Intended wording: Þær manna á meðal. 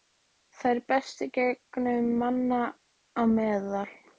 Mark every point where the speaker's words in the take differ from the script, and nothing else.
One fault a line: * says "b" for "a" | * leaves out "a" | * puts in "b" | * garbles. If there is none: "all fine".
* puts in "bestu gengu"